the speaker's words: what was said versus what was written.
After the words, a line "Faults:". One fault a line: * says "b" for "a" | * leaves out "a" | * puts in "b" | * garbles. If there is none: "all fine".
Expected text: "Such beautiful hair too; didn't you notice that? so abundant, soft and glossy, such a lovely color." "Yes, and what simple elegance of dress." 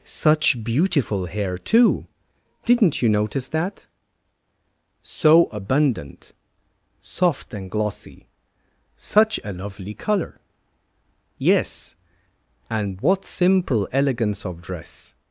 "Such beautiful hair too; didn't you notice that? so abundant, soft and glossy, such a lovely color." "Yes, and what simple elegance of dress."
Faults:
all fine